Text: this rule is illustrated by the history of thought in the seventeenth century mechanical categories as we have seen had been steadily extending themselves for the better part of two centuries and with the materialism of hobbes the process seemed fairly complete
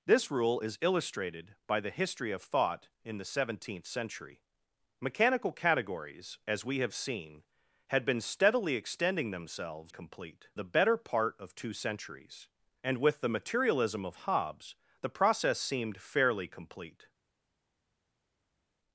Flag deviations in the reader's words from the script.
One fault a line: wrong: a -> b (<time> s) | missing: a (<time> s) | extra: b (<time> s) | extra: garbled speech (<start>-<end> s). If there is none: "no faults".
wrong: for -> complete (9.9 s)